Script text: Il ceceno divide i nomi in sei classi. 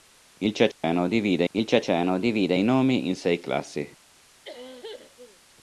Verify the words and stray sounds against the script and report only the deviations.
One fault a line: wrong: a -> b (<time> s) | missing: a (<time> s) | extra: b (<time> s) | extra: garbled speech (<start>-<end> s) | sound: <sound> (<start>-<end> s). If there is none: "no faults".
sound: dropout (0.7-0.8 s)
extra: il ceceno divide (1.5 s)
sound: cough (4.4-5.4 s)